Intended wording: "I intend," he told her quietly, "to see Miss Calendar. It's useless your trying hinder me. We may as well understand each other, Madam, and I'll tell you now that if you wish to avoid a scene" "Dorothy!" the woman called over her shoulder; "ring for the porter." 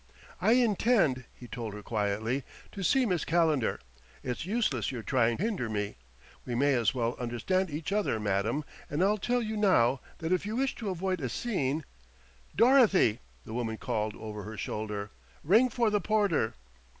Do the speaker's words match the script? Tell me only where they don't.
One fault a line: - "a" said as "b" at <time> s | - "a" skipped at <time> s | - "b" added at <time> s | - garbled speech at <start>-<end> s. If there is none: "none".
none